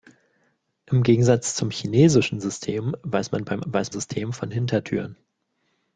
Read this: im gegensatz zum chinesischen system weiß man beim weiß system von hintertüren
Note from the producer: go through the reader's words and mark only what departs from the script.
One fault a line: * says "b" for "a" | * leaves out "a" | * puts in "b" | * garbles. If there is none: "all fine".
all fine